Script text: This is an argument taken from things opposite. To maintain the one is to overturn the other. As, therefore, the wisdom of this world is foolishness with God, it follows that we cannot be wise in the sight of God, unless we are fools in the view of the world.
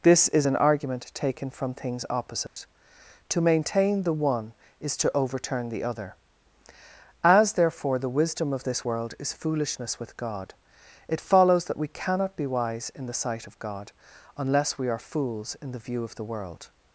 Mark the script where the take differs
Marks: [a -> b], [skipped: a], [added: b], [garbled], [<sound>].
This is an argument taken from things opposite. [dropout] To maintain the one is to overturn the other. As, therefore, the wisdom of this world is foolishness with God, it follows that we cannot be wise in the sight of God, unless we are fools in the view of the world.